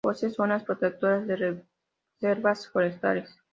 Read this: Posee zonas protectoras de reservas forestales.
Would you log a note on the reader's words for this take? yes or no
no